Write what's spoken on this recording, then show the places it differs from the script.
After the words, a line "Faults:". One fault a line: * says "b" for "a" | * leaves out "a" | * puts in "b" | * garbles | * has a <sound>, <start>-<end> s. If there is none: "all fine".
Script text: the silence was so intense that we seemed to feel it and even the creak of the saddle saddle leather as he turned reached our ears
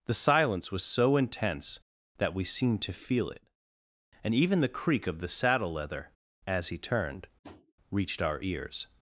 the silence was so intense that we seemed to feel it and even the creak of the saddle leather as he turned reached our ears
Faults:
* leaves out "saddle"
* has a tap, 7.4-7.7 s